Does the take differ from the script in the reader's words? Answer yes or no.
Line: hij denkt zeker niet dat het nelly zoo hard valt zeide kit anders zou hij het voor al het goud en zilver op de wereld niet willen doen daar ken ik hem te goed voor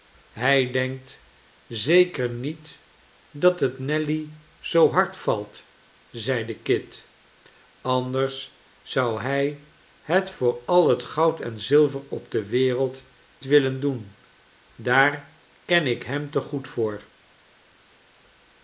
yes